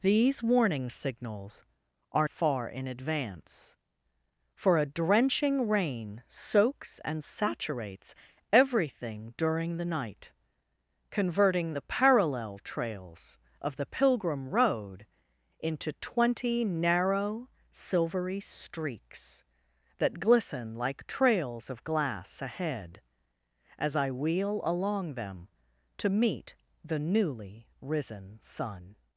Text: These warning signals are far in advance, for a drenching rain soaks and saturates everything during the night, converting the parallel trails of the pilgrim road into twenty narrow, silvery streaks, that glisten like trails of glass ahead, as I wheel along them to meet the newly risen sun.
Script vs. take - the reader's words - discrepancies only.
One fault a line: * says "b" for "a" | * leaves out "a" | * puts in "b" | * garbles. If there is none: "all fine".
all fine